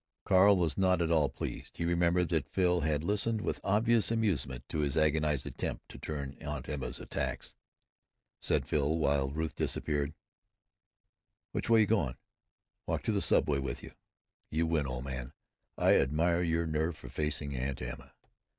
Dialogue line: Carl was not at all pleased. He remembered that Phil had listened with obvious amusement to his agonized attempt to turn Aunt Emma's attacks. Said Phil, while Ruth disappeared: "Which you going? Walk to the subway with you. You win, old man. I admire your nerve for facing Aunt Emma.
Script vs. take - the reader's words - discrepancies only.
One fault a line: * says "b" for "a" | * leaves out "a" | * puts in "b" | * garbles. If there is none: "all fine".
* puts in "way"